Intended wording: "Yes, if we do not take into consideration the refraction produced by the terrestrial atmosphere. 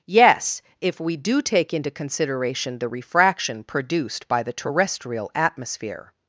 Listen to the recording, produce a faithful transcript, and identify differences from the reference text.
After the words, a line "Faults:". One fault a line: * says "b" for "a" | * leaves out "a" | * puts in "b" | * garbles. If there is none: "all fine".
"Yes, if we do take into consideration the refraction produced by the terrestrial atmosphere.
Faults:
* leaves out "not"